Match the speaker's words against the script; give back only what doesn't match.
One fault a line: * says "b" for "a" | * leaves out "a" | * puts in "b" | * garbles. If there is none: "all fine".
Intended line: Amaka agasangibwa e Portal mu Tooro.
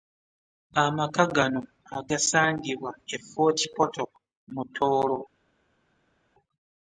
* puts in "gano"
* puts in "Fort"